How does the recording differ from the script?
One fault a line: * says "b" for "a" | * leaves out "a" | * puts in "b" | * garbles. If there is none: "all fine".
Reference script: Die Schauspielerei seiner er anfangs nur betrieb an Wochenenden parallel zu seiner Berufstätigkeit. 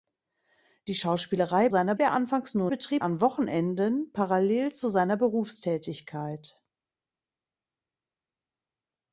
all fine